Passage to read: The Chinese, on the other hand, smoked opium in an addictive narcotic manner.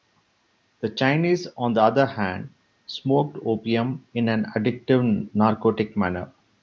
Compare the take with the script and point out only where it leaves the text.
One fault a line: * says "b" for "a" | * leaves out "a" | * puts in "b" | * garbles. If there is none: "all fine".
all fine